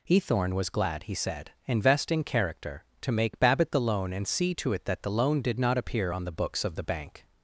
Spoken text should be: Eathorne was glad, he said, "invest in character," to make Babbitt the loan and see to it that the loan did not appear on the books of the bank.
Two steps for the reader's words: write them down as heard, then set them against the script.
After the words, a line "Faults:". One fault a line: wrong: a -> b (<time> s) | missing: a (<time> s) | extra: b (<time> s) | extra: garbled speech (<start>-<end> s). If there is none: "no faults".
Eathorne was glad, he said, "invest in character," to make Babbitt the loan and see to it that the loan did not appear on the books of the bank.
Faults:
no faults